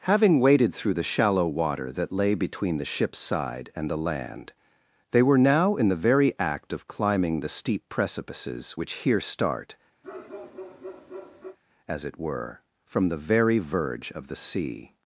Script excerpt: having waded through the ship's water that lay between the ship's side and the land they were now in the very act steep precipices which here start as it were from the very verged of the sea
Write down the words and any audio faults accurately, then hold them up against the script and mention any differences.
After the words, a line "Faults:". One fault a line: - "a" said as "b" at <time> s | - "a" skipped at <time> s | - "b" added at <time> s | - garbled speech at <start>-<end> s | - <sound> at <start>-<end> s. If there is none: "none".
having waded through the shallow water that lay between the ship's side and the land they were now in the very act of climbing the steep precipices which here start as it were from the very verge of the sea
Faults:
- "ship's" said as "shallow" at 1.0 s
- "of climbing the" added at 6.7 s
- bark at 10.0-11.6 s
- "verged" said as "verge" at 13.6 s